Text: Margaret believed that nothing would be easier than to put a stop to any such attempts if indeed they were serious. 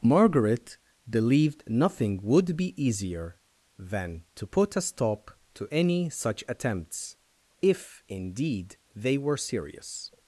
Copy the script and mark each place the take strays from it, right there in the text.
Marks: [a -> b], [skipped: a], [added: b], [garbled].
Margaret believed [skipped: that] nothing would be easier than to put a stop to any such attempts if indeed they were serious.